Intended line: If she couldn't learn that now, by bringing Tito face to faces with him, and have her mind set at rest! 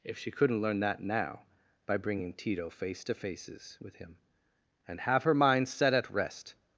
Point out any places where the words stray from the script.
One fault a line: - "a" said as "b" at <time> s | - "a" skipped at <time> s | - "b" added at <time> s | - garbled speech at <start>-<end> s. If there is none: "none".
none